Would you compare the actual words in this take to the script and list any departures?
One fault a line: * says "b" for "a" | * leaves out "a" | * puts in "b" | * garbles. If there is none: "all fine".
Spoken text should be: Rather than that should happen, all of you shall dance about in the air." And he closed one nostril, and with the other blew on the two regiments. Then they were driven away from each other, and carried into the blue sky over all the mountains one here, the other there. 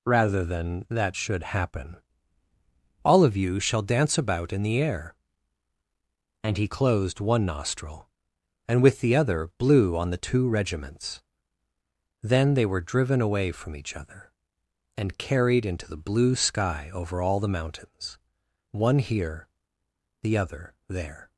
all fine